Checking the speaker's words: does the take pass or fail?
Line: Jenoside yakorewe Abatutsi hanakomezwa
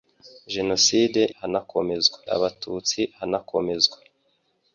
fail